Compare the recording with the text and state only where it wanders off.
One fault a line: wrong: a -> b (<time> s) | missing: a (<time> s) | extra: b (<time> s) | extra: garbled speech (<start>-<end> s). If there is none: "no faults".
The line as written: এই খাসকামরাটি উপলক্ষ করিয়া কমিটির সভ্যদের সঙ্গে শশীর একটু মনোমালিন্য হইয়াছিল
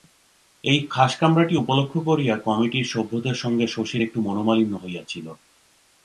no faults